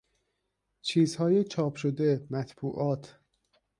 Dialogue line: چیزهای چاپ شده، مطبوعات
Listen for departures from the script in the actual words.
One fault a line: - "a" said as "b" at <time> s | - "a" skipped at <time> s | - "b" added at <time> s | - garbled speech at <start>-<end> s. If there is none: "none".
none